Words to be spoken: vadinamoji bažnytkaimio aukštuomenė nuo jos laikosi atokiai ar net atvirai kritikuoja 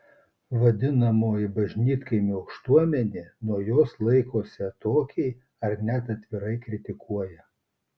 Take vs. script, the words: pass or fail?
pass